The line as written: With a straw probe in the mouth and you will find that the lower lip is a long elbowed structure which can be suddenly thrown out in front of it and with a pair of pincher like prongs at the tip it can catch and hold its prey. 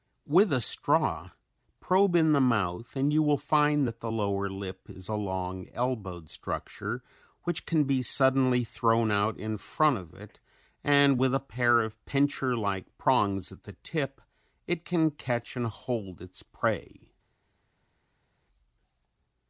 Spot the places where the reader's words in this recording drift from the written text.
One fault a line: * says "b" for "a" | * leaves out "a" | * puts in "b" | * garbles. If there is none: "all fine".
all fine